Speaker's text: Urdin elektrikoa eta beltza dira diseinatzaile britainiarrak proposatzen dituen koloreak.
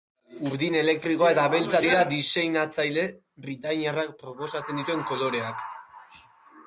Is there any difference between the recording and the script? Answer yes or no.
no